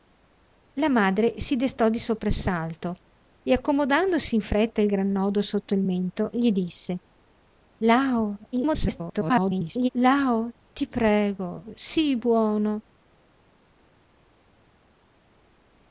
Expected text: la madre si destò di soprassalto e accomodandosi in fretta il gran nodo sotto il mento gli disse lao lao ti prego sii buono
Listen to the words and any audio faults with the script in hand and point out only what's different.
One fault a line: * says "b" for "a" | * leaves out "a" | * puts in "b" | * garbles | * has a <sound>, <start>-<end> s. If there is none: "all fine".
* garbles